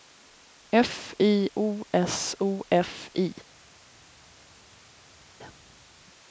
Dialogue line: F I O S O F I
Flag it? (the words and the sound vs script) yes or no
no